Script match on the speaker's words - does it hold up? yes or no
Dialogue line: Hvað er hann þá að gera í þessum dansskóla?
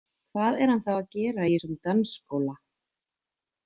yes